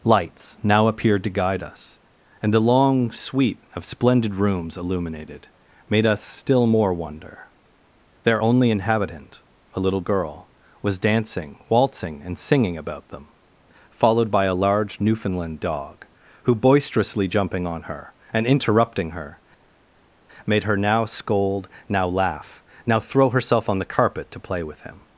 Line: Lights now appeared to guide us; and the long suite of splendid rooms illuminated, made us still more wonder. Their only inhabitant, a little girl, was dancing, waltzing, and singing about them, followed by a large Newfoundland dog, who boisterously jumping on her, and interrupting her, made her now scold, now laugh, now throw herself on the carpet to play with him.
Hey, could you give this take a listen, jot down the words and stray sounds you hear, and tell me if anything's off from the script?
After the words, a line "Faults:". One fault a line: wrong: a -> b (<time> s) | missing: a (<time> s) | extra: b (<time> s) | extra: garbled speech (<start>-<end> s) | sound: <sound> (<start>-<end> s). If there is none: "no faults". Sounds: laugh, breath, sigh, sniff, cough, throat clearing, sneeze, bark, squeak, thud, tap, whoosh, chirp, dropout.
Lights now appeared to guide us; and the long suite of splendid rooms illuminated, made us still more wonder. Their only inhabitant, a little girl, was dancing, waltzing, and singing about them, followed by a large Newfoundland dog, who boisterously jumping on her, and interrupting her, made her now scold, now laugh, now throw herself on the carpet to play with him.
Faults:
no faults